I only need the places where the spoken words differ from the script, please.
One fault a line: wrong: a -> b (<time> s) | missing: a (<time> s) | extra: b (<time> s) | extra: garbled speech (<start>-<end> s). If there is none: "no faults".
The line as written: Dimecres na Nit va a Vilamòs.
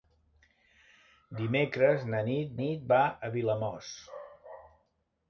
extra: Nit (2.6 s)